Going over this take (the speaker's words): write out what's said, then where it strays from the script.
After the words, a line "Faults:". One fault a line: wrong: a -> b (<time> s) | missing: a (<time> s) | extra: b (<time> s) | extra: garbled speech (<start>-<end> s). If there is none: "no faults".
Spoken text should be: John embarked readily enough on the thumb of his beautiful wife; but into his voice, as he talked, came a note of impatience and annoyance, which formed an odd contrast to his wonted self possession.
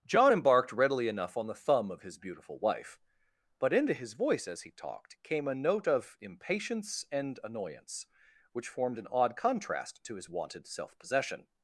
John embarked readily enough on the thumb of his beautiful wife; but into his voice, as he talked, came a note of impatience and annoyance, which formed an odd contrast to his wonted self possession.
Faults:
no faults